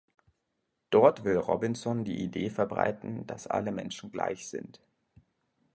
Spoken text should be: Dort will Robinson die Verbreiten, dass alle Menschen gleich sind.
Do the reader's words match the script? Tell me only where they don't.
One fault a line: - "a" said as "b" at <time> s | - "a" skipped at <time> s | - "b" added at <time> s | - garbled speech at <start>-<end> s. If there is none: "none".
- "Idee" added at 2.2 s